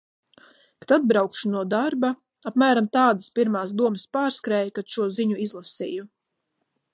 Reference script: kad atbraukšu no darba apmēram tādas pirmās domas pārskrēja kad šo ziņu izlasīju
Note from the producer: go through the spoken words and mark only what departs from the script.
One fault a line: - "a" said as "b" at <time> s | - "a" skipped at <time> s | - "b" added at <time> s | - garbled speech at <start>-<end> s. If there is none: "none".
none